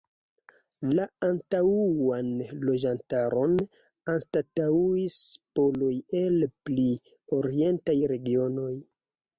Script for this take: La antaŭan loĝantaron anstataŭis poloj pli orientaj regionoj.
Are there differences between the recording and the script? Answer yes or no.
yes